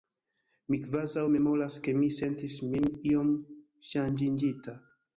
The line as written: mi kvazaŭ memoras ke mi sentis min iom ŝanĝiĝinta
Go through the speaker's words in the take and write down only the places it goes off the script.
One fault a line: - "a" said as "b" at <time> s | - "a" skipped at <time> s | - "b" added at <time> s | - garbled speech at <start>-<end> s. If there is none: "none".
none